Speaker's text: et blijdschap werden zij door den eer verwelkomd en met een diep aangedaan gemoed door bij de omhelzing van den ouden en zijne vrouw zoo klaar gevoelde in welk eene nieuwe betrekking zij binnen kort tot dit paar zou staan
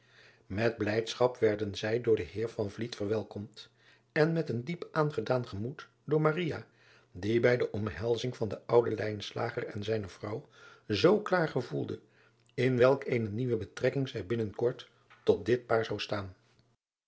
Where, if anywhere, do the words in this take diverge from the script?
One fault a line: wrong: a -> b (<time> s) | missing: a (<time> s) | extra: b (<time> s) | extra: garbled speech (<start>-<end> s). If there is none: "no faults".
extra: die (7.1 s)